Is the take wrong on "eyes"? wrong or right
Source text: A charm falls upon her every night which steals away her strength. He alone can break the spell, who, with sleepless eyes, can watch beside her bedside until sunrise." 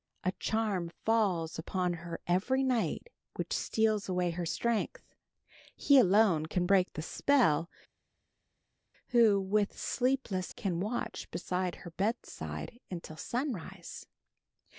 wrong